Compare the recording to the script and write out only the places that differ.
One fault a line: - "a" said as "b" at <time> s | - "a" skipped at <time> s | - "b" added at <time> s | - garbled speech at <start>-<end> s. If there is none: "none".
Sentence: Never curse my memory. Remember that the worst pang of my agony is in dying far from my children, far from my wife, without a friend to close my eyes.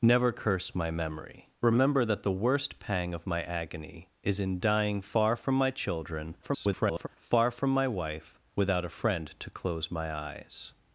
- garbled speech at 6.4-7.1 s